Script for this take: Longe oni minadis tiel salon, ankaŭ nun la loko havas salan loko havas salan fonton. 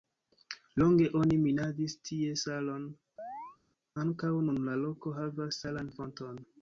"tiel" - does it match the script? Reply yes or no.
no